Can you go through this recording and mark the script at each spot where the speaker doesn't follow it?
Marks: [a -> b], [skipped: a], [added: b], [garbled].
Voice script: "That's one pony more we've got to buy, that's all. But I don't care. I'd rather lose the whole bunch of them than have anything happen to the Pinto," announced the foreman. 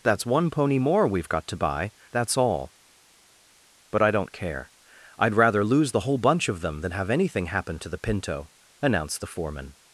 "That's one pony more we've got to buy, that's all. But I don't care. I'd rather lose the whole bunch of them than have anything happen to the Pinto," announced the foreman.